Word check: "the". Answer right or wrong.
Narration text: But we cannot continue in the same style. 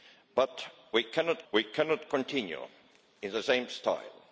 right